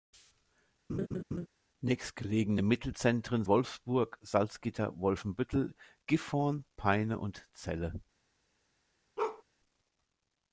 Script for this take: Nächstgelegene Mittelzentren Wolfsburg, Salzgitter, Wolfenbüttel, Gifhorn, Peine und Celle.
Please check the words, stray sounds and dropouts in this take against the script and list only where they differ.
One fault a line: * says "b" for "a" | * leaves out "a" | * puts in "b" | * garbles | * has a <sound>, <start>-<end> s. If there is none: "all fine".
* has a laugh, 0.9-1.5 s
* has a bark, 9.2-9.4 s